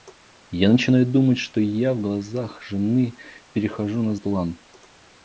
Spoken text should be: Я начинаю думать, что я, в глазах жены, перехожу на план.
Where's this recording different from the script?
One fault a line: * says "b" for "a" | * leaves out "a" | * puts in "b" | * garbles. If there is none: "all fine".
all fine